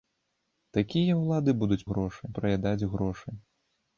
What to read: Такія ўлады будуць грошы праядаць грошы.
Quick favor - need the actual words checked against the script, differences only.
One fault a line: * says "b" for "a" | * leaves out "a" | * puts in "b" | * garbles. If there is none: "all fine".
all fine